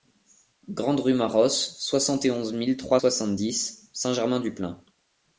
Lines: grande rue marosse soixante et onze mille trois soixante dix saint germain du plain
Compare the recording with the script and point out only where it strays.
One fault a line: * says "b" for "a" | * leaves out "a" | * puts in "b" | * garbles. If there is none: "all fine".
all fine